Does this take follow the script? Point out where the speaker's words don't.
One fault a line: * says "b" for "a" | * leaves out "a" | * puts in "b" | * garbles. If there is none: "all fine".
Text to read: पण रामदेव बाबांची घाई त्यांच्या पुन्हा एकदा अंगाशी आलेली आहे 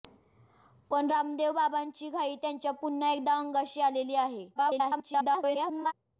* garbles